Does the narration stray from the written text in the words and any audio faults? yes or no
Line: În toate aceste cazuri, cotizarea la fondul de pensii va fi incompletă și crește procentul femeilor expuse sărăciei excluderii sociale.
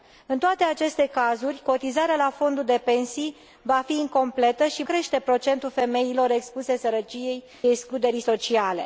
no